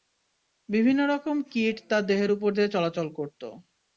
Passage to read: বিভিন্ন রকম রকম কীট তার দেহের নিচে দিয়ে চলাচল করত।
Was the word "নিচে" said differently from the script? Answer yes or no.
yes